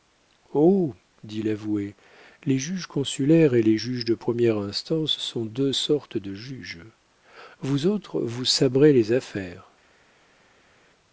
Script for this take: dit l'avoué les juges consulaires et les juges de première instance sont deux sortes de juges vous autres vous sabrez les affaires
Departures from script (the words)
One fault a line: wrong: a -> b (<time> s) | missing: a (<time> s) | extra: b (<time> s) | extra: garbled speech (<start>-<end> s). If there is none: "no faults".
no faults